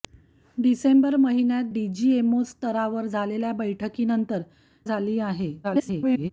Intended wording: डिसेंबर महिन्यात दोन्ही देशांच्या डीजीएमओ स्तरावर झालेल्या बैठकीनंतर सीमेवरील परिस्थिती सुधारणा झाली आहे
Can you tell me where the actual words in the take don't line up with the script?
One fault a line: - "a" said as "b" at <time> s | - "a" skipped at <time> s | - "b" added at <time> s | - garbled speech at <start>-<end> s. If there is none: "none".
- "दोन्ही देशांच्या" skipped at 1.6 s
- "सीमेवरील परिस्थिती सुधारणा" skipped at 4.4 s
- garbled speech at 5.6-6.3 s